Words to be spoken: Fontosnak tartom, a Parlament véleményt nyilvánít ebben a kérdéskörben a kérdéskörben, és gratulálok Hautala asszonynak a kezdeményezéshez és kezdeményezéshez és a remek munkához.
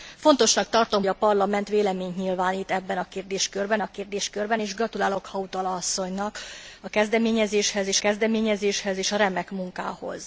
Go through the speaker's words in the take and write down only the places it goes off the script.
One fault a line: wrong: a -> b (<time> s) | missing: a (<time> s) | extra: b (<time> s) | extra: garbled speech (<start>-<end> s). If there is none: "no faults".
no faults